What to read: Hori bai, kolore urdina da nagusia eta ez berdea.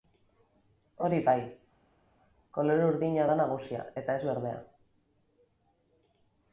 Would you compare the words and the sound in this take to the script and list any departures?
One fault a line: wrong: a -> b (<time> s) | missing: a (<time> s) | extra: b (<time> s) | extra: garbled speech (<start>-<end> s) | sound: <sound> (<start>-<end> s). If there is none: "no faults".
no faults